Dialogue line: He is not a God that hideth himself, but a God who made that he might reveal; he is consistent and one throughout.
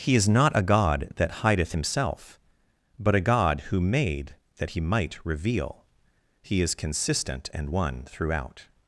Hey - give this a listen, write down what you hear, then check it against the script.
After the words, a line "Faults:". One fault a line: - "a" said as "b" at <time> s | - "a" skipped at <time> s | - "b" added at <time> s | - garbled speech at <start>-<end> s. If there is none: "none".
He is not a God that hideth himself, but a God who made that he might reveal; he is consistent and one throughout.
Faults:
none